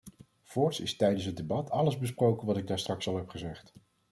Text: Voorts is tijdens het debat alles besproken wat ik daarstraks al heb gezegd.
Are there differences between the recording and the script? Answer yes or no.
no